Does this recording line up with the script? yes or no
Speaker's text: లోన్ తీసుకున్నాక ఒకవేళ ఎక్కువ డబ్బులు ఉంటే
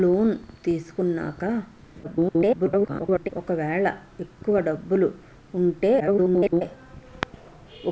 no